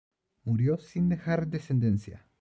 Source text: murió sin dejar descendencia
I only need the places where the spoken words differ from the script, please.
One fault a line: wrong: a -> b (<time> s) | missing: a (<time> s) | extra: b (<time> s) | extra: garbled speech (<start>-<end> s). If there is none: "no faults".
no faults